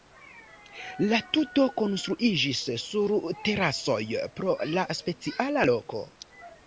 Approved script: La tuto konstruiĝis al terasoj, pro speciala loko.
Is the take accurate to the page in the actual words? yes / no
no